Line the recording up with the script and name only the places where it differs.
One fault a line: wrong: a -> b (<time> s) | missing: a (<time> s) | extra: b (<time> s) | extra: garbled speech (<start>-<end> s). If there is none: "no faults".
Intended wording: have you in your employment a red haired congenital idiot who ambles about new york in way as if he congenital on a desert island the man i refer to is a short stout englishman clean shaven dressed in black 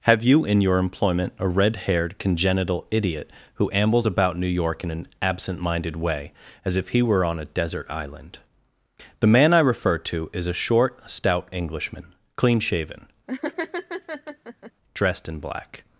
extra: an absent minded (4.9 s)
wrong: congenital -> were (7.0 s)